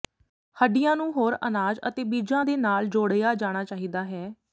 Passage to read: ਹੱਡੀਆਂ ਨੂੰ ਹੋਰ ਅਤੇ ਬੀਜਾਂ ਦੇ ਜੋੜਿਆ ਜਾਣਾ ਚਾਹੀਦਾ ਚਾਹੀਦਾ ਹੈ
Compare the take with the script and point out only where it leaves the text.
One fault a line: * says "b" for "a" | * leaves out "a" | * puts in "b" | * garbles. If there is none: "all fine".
* puts in "ਅਨਾਜ"
* puts in "ਨਾਲ"
* leaves out "ਚਾਹੀਦਾ"